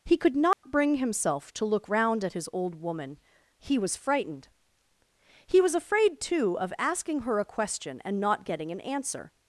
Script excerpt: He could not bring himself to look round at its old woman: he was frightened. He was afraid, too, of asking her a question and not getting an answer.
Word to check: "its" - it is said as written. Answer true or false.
false